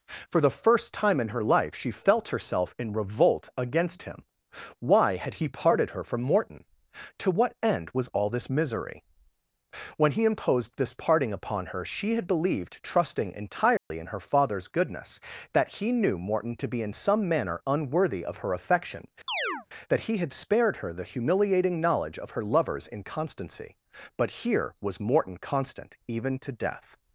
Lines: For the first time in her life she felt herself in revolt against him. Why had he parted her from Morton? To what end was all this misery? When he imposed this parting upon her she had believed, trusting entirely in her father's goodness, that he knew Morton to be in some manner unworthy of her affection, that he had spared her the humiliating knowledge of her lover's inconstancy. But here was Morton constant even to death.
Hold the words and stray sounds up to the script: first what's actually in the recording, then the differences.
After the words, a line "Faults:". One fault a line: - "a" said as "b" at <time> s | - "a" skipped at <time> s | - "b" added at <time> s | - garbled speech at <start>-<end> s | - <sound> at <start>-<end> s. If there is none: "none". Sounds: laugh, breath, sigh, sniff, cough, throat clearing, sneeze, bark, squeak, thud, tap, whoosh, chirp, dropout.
For the first time in her life she felt herself in revolt against him. Why had he parted her from Morton? To what end was all this misery? When he imposed this parting upon her she had believed, trusting entirely in her father's goodness, that he knew Morton to be in some manner unworthy of her affection, that he had spared her the humiliating knowledge of her lover's inconstancy. But here was Morton constant even to death.
Faults:
- dropout at 13.8-13.9 s
- chirp at 19.3-19.7 s